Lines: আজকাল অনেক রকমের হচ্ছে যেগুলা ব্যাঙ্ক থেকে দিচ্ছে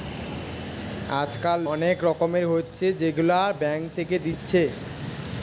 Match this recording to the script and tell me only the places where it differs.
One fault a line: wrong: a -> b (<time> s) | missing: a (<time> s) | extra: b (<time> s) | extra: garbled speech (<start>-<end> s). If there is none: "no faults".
no faults